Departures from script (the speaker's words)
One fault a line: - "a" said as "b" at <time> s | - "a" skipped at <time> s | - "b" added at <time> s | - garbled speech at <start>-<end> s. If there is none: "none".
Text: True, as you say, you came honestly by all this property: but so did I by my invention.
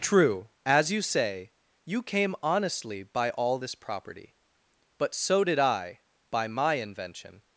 none